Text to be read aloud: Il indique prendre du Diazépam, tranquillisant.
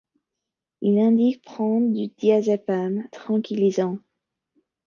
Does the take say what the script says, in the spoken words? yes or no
yes